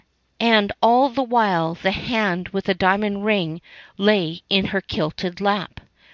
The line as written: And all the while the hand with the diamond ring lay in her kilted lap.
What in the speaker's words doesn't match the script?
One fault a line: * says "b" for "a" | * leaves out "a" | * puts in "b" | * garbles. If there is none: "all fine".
all fine